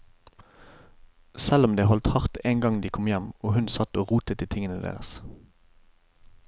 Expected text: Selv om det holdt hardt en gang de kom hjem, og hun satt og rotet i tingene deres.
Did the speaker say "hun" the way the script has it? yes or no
yes